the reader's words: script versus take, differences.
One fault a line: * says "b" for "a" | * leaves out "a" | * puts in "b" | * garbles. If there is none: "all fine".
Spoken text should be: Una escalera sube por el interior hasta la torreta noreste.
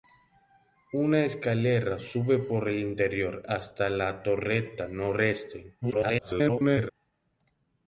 * garbles